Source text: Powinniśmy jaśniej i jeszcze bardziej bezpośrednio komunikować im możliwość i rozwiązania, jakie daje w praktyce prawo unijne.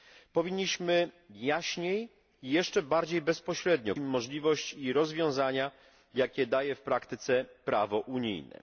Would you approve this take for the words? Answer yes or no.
no